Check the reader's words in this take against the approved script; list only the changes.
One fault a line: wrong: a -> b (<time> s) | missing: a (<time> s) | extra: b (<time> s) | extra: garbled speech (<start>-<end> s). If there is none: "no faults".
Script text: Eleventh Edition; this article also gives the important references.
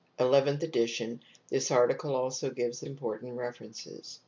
no faults